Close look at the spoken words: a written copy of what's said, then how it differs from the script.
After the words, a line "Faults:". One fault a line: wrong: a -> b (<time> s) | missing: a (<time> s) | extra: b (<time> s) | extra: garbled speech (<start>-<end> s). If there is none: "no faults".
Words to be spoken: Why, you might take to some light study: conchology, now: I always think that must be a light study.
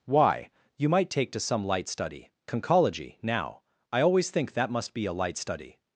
Why, you might take to some light study: conchology, now: I always think that must be a light study.
Faults:
no faults